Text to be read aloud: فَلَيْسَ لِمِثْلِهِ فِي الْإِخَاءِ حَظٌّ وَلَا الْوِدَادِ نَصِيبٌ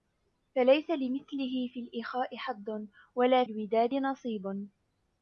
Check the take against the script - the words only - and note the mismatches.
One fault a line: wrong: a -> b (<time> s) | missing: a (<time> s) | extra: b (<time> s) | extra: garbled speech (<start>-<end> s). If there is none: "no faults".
no faults